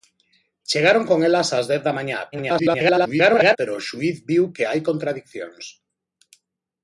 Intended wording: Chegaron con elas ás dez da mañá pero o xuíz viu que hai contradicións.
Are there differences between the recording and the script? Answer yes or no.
yes